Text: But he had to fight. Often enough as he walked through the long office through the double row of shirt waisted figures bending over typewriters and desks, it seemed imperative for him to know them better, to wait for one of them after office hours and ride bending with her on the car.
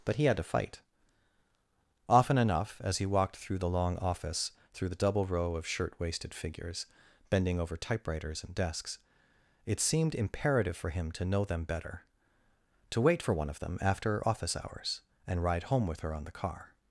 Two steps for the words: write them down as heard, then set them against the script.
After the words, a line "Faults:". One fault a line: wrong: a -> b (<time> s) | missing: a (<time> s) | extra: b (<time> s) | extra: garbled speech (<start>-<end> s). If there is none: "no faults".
But he had to fight. Often enough as he walked through the long office through the double row of shirt waisted figures bending over typewriters and desks, it seemed imperative for him to know them better, to wait for one of them after office hours and ride home with her on the car.
Faults:
wrong: bending -> home (15.6 s)